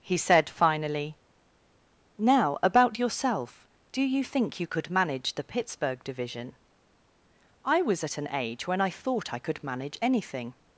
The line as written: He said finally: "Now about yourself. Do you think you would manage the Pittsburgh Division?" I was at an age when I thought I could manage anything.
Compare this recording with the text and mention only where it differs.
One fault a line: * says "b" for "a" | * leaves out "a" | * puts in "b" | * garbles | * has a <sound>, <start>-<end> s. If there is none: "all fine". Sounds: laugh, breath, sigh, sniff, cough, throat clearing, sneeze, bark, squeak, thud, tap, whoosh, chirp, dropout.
* says "could" for "would"